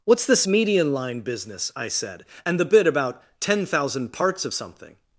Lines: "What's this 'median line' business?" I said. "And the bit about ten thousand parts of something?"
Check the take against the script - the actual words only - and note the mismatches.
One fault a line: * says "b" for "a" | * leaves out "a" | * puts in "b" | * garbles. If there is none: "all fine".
all fine